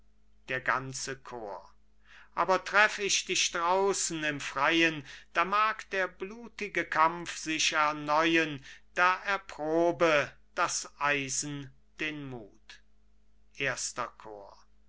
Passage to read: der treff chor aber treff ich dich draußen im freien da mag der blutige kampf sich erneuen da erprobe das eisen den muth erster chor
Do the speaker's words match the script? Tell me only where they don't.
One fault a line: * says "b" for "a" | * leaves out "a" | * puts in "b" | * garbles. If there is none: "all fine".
* says "ganze" for "treff"